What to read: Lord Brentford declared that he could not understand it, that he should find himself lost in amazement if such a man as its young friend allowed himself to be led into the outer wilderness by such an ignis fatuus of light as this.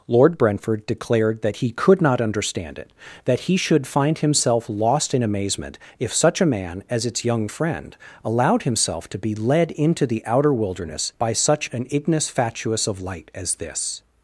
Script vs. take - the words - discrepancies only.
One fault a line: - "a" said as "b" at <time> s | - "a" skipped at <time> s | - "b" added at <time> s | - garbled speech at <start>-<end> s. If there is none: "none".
none